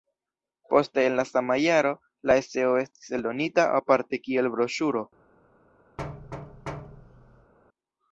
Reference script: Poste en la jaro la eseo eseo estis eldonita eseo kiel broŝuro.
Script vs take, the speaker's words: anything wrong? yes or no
yes